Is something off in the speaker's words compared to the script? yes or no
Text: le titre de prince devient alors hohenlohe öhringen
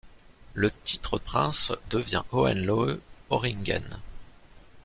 yes